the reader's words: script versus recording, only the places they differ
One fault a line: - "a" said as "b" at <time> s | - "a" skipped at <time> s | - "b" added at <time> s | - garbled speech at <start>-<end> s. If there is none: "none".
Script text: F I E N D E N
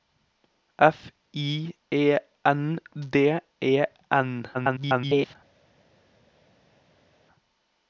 - garbled speech at 4.5-5.4 s